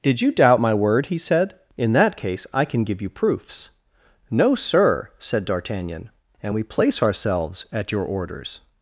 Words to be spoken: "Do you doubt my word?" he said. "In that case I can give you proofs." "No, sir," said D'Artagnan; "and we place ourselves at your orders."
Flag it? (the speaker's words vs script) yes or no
yes